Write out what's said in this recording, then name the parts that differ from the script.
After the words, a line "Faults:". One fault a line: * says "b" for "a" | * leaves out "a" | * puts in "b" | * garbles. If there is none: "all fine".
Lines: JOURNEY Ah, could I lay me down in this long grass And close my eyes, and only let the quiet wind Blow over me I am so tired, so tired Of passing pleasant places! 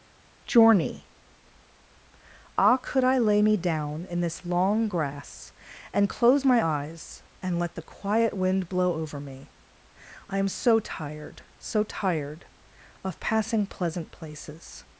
JOURNEY Ah, could I lay me down in this long grass And close my eyes, and let the quiet wind Blow over me I am so tired, so tired Of passing pleasant places!
Faults:
* leaves out "only"